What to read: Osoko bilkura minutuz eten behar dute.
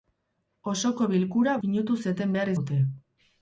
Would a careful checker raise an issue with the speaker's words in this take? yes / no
no